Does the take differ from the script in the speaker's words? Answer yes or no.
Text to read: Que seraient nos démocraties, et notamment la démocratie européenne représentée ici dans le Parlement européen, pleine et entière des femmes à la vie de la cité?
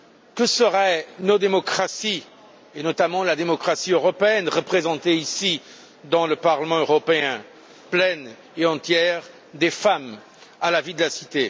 no